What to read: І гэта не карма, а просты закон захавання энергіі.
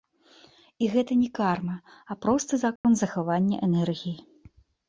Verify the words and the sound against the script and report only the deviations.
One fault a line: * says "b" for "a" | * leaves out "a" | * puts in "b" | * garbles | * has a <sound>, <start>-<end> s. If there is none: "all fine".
* has a dropout, 2.8-2.8 s